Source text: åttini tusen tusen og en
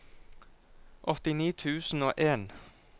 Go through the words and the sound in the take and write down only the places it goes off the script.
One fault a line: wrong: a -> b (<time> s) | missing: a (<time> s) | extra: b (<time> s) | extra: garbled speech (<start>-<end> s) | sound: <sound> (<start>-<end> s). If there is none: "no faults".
missing: tusen (2.0 s)